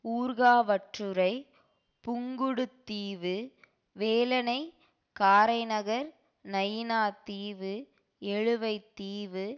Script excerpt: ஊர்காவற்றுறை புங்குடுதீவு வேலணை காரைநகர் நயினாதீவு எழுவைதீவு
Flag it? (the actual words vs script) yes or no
no